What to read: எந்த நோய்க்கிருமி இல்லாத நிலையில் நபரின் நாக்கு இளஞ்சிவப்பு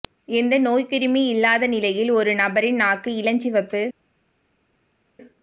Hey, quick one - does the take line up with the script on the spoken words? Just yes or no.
no